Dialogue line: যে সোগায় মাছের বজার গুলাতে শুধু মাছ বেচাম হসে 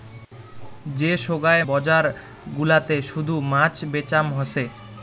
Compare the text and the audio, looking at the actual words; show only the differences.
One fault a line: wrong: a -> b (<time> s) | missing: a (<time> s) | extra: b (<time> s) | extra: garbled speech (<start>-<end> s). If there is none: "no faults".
missing: মাছের (1.6 s)